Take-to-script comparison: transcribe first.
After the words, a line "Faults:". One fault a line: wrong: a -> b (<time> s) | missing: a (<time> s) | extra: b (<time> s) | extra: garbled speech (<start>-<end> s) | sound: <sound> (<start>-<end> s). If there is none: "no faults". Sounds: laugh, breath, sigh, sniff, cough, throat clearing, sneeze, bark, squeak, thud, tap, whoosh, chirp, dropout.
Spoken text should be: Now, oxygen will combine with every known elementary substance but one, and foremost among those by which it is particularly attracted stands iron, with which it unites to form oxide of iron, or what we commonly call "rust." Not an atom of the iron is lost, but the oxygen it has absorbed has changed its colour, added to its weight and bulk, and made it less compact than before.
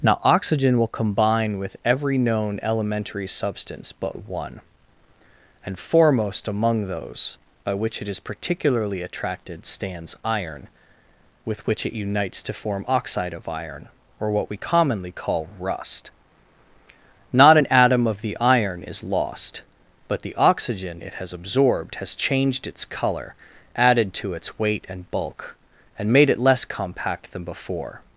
Now, oxygen will combine with every known elementary substance but one, and foremost among those by which it is particularly attracted stands iron, with which it unites to form oxide of iron, or what we commonly call "rust." Not an atom of the iron is lost, but the oxygen it has absorbed has changed its colour, added to its weight and bulk, and made it less compact than before.
Faults:
no faults